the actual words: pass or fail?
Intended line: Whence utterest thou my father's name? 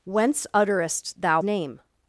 fail